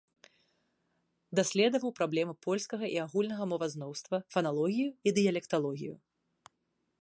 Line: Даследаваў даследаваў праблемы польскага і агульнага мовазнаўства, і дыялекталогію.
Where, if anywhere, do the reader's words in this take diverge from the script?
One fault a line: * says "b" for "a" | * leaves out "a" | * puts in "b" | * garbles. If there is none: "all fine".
* leaves out "даследаваў"
* puts in "фаналогію"